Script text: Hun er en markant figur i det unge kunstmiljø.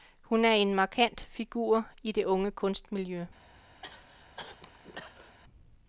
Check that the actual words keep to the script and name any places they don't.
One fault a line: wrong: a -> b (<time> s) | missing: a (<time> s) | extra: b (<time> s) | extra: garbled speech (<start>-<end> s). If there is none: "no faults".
no faults